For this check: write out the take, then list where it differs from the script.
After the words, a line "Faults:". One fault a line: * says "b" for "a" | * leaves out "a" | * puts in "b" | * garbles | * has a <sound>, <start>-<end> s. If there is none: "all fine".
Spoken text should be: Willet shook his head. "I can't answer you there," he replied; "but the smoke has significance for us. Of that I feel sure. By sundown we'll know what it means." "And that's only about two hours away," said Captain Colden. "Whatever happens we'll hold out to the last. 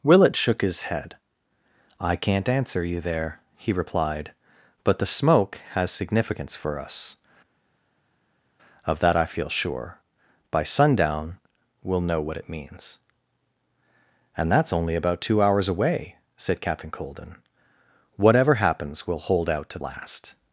Willet shook his head. "I can't answer you there," he replied; "but the smoke has significance for us. Of that I feel sure. By sundown we'll know what it means." "And that's only about two hours away," said Captain Colden. "Whatever happens we'll hold out to last.
Faults:
* leaves out "the"